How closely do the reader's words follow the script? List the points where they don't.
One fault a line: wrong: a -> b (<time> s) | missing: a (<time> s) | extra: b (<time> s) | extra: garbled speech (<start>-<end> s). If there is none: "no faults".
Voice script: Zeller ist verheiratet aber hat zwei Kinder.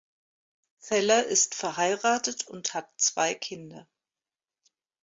wrong: aber -> und (2.5 s)